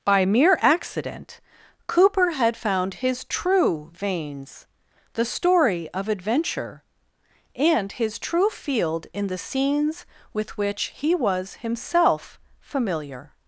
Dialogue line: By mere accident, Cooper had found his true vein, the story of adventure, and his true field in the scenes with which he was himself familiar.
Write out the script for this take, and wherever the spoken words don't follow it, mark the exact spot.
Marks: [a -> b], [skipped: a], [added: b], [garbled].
By mere accident, Cooper had found his true [vein, -> veins] the story of adventure, and his true field in the scenes with which he was himself familiar.